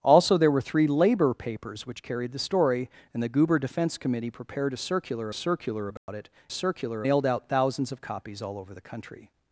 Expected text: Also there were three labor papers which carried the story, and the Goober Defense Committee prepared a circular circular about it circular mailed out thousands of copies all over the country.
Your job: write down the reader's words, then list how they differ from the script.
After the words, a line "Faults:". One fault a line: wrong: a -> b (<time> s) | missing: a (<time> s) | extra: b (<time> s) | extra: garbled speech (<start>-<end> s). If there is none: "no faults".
Also there were three labor papers which carried the story, and the Goober Defense Committee prepared a circular circular about it circular mailed out thousands of copies all over the country.
Faults:
no faults